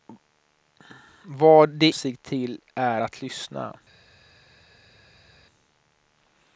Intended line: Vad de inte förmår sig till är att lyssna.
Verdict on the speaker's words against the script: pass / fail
fail